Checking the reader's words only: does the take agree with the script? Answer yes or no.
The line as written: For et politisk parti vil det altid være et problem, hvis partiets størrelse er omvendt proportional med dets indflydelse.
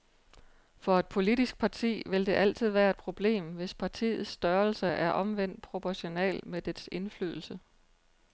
yes